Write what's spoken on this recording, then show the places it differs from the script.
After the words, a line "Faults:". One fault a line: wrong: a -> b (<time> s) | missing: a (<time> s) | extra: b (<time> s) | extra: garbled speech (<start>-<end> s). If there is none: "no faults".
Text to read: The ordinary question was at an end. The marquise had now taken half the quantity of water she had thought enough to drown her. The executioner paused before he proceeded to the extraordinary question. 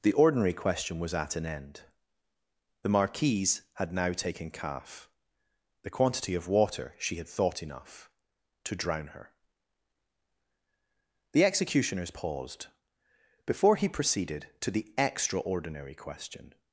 The ordinary question was at an end. The marquise had now taken calf the quantity of water she had thought enough to drown her. The executioners paused before he proceeded to the extraordinary question.
Faults:
wrong: half -> calf (4.5 s)
wrong: executioner -> executioners (11.4 s)